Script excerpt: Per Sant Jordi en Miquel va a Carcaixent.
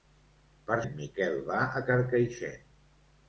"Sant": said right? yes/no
no